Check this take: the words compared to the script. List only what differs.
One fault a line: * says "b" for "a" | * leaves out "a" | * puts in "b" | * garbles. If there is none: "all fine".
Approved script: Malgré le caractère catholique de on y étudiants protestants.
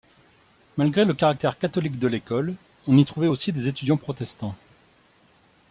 * puts in "l'école"
* puts in "trouvait aussi des"